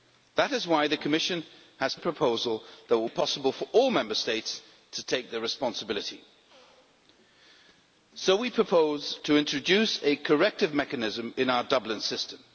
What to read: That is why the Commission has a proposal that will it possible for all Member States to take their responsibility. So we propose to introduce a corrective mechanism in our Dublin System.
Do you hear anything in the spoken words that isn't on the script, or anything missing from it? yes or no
no